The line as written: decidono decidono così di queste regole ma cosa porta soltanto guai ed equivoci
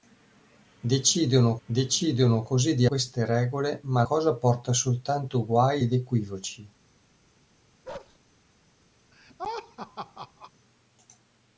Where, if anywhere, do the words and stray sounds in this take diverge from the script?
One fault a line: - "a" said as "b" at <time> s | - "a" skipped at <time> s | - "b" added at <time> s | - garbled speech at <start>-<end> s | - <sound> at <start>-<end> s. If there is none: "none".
- bark at 7.8-8.2 s
- laugh at 9.1-10.5 s